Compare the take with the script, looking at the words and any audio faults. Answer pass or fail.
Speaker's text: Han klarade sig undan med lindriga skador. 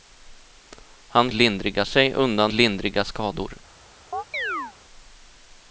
fail